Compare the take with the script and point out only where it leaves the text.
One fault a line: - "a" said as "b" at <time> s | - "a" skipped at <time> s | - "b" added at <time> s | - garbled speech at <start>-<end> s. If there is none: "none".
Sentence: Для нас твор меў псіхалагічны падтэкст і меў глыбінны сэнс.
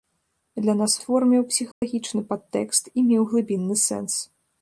none